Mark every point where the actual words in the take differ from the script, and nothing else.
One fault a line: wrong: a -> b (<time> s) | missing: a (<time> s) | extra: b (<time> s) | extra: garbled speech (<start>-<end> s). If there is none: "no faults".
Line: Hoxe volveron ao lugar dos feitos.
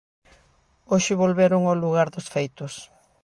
no faults